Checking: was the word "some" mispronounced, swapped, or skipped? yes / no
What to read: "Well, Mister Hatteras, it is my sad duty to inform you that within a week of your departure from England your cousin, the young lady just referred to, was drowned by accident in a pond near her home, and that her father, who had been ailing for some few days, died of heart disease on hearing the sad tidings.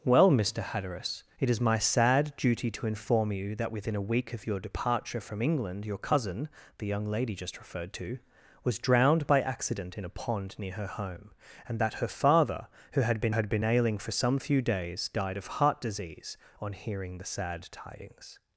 no